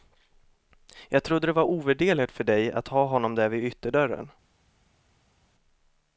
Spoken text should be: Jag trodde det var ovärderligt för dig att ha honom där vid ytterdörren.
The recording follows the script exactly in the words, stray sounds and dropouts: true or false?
true